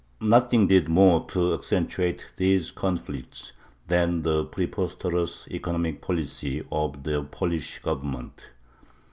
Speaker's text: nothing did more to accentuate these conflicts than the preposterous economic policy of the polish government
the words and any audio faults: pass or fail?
pass